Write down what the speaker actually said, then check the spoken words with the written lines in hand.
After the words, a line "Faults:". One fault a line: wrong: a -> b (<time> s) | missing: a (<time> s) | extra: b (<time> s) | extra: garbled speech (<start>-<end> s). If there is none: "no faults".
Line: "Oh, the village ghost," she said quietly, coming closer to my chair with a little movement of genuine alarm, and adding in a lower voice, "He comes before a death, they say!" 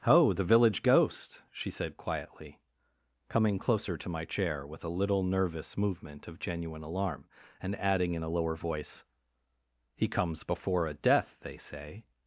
"Oh, the village ghost," she said quietly, coming closer to my chair with a little nervous movement of genuine alarm, and adding in a lower voice, "He comes before a death, they say!"
Faults:
extra: nervous (5.2 s)